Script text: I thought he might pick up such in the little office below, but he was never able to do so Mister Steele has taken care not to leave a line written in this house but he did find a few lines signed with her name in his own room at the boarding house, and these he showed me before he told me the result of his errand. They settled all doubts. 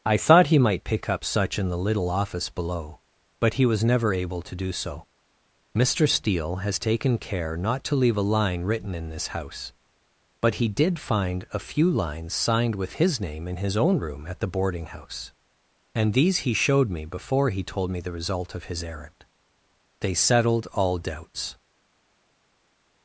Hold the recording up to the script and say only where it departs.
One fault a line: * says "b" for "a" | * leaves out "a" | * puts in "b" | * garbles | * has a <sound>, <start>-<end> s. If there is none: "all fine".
* says "his" for "her"